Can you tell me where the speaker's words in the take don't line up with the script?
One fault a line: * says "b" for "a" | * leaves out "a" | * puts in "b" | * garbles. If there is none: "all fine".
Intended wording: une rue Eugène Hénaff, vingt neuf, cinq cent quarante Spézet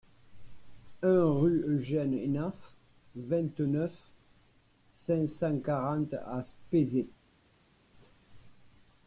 * says "un" for "une"
* puts in "à"